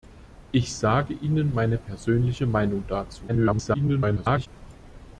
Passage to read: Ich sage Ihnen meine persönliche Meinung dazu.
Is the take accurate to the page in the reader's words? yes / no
no